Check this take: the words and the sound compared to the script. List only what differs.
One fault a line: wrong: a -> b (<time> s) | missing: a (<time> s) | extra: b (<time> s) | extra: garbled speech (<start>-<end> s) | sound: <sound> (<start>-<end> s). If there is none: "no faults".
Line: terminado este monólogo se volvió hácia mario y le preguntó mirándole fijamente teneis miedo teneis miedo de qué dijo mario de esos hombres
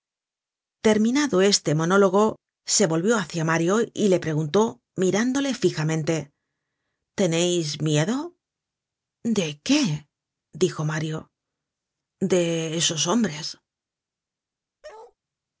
missing: teneis miedo (8.3 s)
sound: bark (14.8-15.2 s)